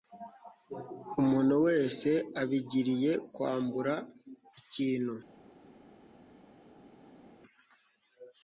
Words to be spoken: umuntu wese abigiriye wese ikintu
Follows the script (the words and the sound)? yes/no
no